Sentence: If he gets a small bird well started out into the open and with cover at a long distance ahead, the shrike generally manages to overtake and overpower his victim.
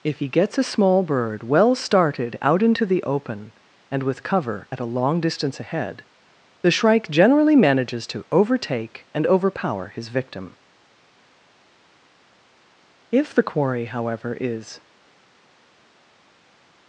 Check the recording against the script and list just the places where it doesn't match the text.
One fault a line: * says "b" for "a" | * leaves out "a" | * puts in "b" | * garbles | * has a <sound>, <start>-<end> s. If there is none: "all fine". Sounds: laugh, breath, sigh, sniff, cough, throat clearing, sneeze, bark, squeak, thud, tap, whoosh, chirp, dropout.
* puts in "If the quarry however is"